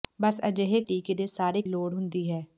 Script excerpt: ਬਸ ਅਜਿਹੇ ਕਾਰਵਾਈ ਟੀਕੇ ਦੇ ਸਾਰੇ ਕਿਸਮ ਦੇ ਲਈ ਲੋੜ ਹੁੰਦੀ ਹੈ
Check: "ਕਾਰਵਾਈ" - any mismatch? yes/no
yes